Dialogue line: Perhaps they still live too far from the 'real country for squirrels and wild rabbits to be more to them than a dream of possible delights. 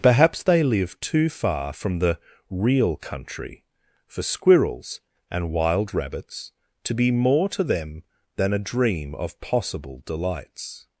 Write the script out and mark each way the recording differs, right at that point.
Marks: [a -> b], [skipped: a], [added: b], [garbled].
Perhaps they [skipped: still] live too far from the 'real country for squirrels and wild rabbits to be more to them than a dream of possible delights.